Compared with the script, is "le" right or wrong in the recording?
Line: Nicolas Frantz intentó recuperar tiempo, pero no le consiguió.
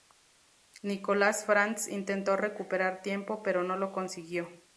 wrong